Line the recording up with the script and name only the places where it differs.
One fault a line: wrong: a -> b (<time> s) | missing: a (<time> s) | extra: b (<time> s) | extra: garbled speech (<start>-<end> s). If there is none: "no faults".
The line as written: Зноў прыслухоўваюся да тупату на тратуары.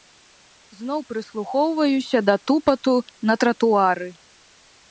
no faults